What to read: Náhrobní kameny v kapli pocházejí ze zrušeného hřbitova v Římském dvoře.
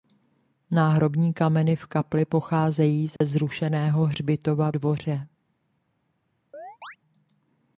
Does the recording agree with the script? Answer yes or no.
no